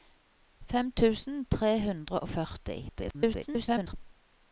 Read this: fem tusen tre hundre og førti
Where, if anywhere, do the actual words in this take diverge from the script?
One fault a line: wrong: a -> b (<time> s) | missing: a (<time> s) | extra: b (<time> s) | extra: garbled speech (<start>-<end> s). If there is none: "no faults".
extra: garbled speech (2.9-3.9 s)